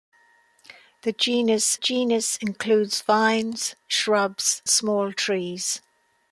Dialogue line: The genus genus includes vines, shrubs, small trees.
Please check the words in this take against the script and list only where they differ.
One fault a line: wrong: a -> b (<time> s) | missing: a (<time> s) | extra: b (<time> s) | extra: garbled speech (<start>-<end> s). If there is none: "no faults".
no faults